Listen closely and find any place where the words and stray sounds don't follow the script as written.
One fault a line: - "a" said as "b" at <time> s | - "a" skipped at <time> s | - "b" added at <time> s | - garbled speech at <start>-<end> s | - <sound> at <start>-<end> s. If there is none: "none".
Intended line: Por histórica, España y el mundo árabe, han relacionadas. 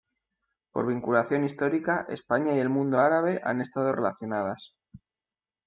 - "vinculación" added at 0.9 s
- "estado" added at 3.6 s